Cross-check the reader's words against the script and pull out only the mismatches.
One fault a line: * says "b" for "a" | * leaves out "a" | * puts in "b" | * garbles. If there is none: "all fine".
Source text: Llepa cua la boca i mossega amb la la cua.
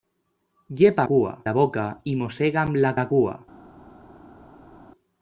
all fine